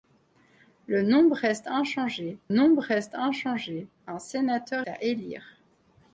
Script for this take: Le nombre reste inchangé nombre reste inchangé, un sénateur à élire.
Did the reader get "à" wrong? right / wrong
right